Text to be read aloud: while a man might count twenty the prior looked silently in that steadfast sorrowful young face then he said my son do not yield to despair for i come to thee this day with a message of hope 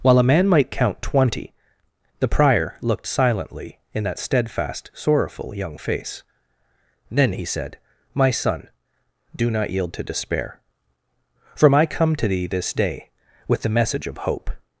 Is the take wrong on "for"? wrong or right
wrong